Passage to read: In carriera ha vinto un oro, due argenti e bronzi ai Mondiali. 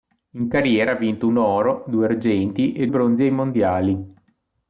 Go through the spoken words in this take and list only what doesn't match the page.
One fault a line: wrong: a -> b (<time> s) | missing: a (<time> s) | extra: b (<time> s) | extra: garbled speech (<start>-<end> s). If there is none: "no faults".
no faults